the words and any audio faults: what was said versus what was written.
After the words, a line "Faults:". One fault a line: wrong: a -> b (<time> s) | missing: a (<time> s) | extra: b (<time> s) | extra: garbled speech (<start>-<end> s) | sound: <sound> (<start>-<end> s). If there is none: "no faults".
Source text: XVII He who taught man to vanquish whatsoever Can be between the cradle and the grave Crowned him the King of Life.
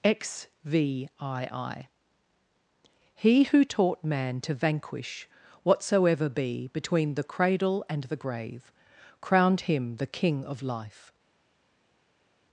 XVII He who taught man to vanquish whatsoever be between the cradle and the grave Crowned him the King of Life.
Faults:
missing: Can (6.3 s)